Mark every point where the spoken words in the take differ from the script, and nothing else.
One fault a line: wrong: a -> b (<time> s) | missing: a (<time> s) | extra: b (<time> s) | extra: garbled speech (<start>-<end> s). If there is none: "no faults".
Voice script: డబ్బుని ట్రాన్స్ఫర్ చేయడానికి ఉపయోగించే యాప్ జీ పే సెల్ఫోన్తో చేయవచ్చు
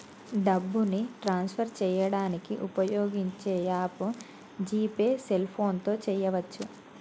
no faults